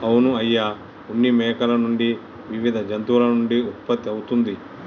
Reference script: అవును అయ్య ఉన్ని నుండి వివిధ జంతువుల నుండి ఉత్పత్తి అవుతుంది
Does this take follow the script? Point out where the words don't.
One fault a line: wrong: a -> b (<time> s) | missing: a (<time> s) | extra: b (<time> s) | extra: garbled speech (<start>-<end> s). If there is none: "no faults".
extra: మేకల (1.3 s)